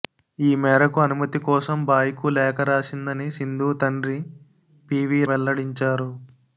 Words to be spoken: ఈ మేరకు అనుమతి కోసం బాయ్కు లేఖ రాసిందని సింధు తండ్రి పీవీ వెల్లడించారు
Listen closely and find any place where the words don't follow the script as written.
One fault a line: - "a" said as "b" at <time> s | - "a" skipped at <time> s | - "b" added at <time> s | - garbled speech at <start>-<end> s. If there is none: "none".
none